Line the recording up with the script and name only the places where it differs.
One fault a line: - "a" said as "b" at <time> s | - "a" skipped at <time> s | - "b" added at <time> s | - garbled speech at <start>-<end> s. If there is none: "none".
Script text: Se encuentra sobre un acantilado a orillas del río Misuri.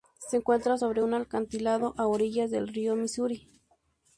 none